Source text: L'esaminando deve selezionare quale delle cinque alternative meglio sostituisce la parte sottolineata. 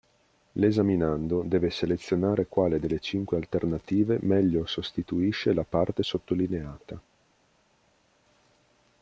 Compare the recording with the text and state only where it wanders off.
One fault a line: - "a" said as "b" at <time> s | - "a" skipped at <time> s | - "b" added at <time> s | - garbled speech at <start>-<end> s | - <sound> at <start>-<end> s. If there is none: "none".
none